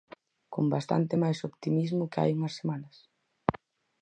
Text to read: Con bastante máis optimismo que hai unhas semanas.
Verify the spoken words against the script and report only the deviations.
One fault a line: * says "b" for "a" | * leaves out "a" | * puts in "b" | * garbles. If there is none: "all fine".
all fine